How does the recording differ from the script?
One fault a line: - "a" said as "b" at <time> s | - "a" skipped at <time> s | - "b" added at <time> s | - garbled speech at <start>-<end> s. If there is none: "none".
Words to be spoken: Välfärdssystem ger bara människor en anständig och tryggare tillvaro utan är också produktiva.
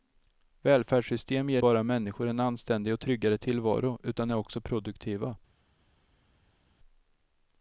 none